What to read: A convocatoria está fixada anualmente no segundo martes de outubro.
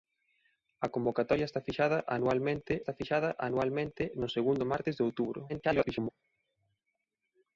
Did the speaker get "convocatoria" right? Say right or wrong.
right